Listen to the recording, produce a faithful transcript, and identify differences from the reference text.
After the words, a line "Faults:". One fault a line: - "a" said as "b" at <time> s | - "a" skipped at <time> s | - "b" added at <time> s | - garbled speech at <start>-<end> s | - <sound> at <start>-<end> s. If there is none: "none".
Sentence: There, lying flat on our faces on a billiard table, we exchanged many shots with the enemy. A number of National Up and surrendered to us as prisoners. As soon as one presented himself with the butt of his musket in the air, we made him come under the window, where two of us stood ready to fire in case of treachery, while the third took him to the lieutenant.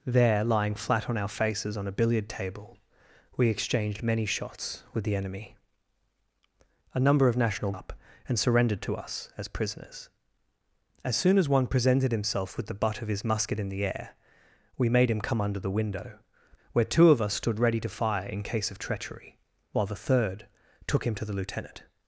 There, lying flat on our faces on a billiard table, we exchanged many shots with the enemy. A number of National Up and surrendered to us as prisoners. As soon as one presented himself with the butt of his musket in the air, we made him come under the window, where two of us stood ready to fire in case of treachery, while the third took him to the lieutenant.
Faults:
none